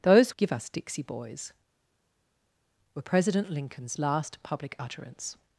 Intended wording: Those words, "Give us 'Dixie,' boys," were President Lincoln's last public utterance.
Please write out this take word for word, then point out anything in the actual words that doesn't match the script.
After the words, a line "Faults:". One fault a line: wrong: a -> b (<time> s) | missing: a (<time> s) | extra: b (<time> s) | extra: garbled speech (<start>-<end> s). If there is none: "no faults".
Those "Give us 'Dixie,' boys," were President Lincoln's last public utterance.
Faults:
missing: words (0.3 s)